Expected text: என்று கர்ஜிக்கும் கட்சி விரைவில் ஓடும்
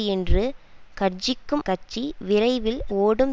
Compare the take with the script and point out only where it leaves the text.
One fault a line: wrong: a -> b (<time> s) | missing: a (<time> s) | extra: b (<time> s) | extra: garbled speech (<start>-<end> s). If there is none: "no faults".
no faults